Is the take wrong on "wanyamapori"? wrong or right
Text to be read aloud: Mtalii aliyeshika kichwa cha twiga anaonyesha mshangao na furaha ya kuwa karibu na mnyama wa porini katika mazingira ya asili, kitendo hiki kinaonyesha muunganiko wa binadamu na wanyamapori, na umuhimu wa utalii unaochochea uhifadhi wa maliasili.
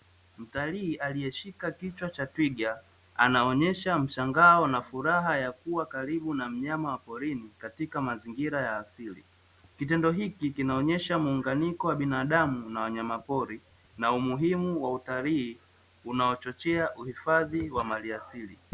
right